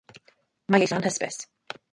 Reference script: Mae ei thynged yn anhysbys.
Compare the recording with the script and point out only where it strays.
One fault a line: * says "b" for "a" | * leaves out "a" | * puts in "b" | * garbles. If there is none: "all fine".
* leaves out "thynged"